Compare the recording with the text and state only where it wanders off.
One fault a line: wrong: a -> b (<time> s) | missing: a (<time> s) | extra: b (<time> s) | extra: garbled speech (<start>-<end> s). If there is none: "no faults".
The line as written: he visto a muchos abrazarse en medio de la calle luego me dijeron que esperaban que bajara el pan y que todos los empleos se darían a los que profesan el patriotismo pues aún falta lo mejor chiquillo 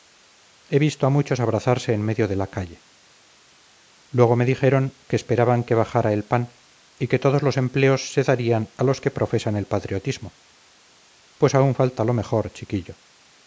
no faults